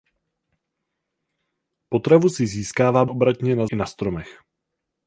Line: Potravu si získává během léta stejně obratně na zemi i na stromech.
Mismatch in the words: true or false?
true